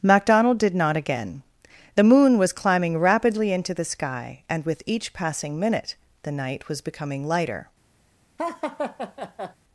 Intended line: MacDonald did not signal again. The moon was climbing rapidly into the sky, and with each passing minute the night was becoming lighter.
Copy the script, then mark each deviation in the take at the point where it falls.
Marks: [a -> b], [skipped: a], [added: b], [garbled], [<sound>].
MacDonald did not [skipped: signal] again. The moon was climbing rapidly into the sky, and with each passing minute the night was becoming lighter. [laugh]